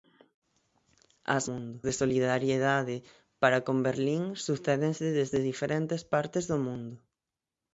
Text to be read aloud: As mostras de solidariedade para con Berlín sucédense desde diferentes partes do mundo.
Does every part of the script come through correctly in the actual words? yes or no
no